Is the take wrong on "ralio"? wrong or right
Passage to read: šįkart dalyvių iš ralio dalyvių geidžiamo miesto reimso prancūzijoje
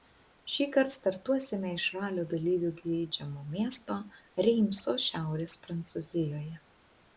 right